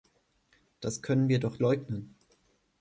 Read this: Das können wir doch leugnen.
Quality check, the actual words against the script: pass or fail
pass